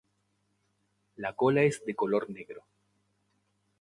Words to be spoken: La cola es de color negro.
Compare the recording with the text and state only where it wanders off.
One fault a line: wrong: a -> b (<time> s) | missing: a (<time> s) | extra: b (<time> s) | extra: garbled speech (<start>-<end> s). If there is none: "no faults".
no faults